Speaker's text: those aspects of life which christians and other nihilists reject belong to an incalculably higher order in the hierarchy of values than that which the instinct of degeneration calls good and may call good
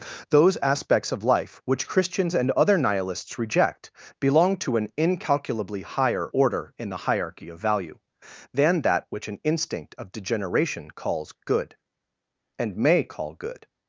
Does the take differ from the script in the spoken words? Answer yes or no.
yes